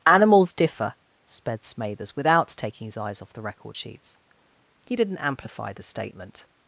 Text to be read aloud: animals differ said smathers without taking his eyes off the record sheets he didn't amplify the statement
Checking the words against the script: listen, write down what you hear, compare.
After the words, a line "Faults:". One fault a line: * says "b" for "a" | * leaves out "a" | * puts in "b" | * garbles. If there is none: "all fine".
animals differ sped smathers without taking his eyes off the record sheets he didn't amplify the statement
Faults:
* says "sped" for "said"